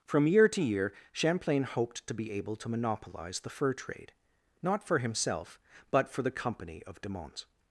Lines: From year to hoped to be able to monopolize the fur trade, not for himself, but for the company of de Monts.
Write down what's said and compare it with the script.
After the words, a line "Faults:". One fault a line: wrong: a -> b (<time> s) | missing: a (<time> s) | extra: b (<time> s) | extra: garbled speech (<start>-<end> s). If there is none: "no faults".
From year to year Champlain hoped to be able to monopolize the fur trade, not for himself, but for the company of de Monts.
Faults:
extra: year Champlain (0.6 s)